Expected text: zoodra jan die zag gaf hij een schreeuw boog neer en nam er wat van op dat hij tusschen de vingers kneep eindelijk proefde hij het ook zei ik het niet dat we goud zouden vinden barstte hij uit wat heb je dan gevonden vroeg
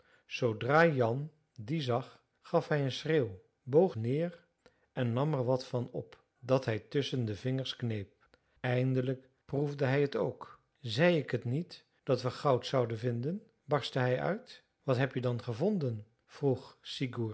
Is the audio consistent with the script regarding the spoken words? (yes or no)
yes